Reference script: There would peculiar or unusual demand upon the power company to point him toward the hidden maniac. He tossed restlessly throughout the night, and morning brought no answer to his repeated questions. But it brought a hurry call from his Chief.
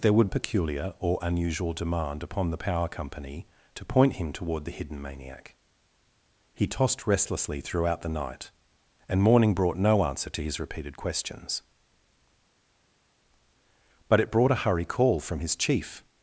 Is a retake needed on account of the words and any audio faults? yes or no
no